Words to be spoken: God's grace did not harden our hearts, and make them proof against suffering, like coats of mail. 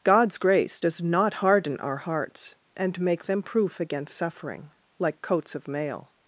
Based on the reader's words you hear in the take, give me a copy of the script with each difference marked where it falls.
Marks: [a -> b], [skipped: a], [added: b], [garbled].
God's grace [did -> does] not harden our hearts, and make them proof against suffering, like coats of mail.